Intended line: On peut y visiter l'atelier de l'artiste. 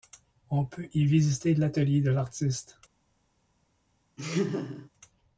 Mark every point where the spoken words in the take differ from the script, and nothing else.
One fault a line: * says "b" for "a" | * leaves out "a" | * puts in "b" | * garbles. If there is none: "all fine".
all fine